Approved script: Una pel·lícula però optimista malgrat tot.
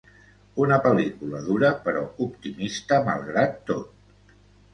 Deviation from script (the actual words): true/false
true